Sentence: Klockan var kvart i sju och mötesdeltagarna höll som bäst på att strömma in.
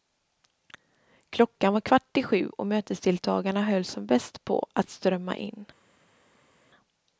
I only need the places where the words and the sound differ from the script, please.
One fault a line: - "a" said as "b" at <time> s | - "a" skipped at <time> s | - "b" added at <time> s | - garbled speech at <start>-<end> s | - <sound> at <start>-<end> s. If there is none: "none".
none